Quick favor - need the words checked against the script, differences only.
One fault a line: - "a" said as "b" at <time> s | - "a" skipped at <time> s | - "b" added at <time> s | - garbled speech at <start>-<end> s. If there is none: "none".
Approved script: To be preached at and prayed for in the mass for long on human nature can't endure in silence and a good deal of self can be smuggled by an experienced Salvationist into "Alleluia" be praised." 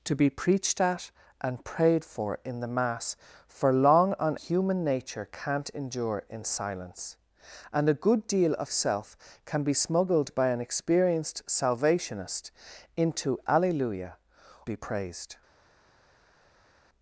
none